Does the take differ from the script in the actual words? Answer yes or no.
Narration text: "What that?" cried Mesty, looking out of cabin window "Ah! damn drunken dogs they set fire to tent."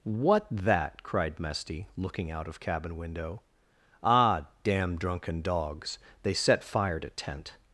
no